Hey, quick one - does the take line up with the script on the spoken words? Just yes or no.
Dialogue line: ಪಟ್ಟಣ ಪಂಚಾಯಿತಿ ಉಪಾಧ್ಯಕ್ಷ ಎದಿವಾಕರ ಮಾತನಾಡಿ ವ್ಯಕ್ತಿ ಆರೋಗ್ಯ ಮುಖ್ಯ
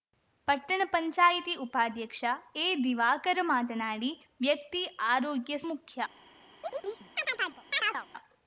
yes